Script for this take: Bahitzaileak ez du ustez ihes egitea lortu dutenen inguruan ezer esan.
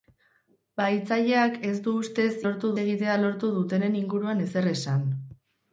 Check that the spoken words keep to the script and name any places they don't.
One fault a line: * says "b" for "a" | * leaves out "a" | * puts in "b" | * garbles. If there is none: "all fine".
* says "lortu" for "ihes"